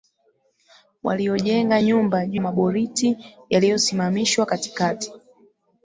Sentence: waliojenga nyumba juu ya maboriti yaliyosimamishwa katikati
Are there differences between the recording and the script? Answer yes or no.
yes